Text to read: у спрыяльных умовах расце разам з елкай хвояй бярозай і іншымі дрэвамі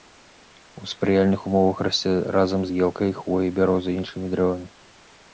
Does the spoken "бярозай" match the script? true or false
true